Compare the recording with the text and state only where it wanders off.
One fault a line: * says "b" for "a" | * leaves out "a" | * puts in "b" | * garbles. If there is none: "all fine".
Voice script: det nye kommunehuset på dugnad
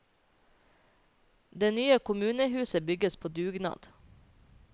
* puts in "bygges"